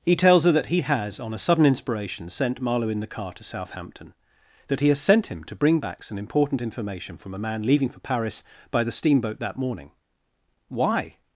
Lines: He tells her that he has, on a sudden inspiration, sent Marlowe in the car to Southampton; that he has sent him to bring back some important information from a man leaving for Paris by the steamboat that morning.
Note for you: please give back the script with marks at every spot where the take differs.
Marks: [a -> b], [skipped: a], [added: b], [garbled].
He tells her that he has, on a sudden inspiration, sent Marlowe in the car to Southampton; that he has sent him to bring back some important information from a man leaving for Paris by the steamboat that morning. [added: Why]